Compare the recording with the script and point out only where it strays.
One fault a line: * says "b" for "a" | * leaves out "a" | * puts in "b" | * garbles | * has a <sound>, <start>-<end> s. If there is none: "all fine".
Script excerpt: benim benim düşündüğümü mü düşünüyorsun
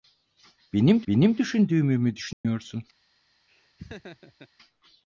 * has a dropout, 2.3-2.4 s
* has a laugh, 3.5-4.5 s